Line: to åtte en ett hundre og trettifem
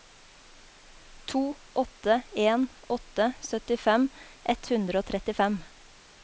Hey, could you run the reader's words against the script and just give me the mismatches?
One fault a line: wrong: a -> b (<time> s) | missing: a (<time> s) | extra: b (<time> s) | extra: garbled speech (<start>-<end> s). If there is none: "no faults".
extra: åtte syttifem (2.9 s)